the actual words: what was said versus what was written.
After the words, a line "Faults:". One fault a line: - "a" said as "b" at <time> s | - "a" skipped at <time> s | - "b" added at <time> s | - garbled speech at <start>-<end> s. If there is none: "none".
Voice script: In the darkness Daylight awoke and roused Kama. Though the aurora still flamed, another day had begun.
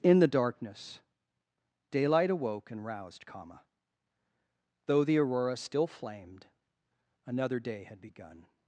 In the darkness Daylight awoke and roused Kama. Though the aurora still flamed, another day had begun.
Faults:
none